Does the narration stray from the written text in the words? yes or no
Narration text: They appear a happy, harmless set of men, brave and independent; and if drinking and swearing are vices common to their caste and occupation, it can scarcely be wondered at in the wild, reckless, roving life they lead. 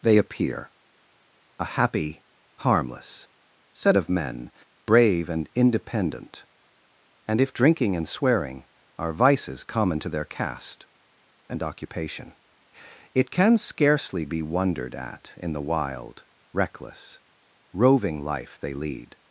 no